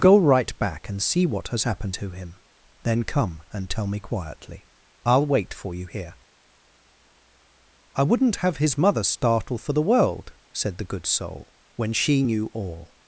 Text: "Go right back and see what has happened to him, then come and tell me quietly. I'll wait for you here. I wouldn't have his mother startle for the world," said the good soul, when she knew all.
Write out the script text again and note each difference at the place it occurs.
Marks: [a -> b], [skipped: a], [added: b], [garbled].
"Go right back and see what has happened to him, then come and tell me quietly. I'll wait for you here. I wouldn't have his mother startle for the world," said the good soul, when she knew all.